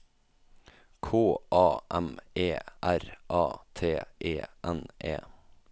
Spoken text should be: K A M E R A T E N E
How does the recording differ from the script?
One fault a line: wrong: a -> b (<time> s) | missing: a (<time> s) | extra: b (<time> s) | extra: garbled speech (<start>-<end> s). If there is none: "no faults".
no faults